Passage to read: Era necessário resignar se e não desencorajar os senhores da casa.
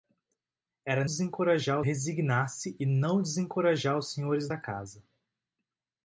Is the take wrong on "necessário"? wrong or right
wrong